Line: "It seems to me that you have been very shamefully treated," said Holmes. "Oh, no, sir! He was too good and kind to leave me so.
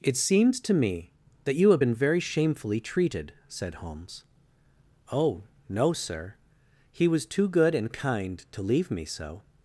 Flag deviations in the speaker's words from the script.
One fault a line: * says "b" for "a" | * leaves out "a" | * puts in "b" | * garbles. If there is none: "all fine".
all fine